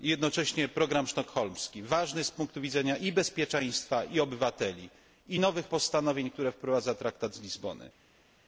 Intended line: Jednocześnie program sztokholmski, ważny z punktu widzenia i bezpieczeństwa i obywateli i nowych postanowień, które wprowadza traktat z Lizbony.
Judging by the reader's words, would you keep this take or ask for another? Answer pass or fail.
pass